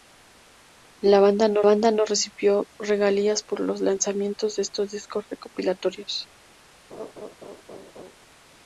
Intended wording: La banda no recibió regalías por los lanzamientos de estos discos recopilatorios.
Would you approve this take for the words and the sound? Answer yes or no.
no